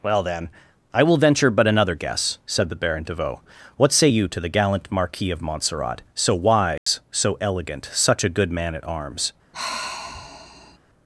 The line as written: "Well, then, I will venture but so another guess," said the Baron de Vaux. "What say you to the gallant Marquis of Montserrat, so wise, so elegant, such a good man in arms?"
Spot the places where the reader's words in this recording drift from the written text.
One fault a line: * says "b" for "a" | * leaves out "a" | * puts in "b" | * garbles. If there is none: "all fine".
* leaves out "so"
* says "at" for "in"